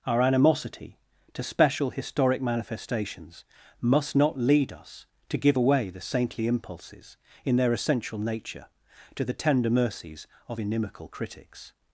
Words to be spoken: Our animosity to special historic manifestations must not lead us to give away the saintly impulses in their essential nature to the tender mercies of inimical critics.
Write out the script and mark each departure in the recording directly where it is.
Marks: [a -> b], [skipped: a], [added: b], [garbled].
Our animosity to special historic manifestations must not lead us to give away the saintly impulses in their essential nature to the tender mercies of inimical critics.